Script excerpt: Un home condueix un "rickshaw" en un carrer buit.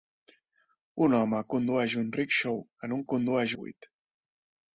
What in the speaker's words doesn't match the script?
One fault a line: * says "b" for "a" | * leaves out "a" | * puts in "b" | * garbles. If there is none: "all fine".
* says "condueix" for "carrer"